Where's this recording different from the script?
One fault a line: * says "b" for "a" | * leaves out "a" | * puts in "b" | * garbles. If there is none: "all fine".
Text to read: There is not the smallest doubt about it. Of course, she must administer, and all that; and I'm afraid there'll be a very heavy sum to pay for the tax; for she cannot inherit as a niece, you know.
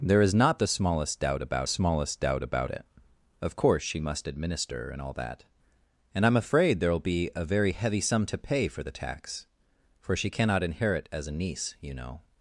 * puts in "smallest doubt about"